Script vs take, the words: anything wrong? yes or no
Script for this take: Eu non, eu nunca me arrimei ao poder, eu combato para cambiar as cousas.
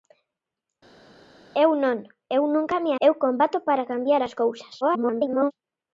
yes